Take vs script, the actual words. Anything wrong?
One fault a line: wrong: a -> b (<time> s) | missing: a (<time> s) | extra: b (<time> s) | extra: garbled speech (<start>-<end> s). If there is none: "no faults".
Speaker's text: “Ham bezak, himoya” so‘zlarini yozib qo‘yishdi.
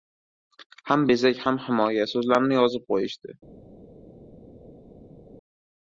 extra: ham (1.5 s)